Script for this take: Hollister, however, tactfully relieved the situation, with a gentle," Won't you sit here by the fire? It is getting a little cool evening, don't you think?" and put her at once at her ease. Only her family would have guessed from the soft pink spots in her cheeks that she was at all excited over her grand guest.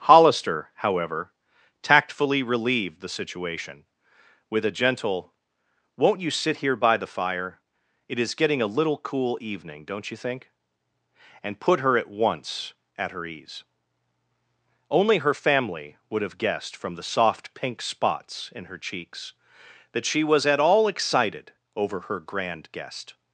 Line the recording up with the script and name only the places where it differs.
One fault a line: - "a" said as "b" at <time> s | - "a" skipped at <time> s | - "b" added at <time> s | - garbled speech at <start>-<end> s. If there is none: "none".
none